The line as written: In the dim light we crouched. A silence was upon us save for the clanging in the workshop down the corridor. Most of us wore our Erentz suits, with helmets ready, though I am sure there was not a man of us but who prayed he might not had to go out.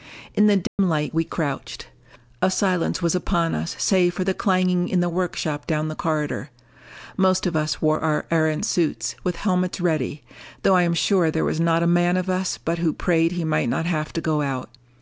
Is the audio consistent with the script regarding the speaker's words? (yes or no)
no